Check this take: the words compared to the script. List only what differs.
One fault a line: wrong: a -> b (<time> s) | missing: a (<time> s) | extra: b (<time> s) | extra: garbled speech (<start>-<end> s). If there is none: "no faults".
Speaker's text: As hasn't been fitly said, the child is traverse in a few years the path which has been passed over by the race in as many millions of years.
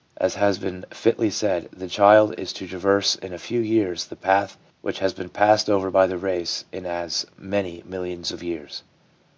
wrong: hasn't -> has (0.3 s)
extra: to (2.5 s)